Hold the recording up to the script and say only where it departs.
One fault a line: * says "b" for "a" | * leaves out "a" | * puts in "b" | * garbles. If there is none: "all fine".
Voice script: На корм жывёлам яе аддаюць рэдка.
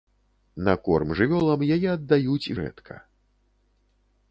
all fine